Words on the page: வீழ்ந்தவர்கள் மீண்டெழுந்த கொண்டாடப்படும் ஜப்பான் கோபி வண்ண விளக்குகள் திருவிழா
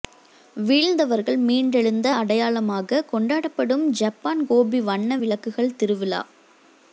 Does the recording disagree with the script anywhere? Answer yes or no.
yes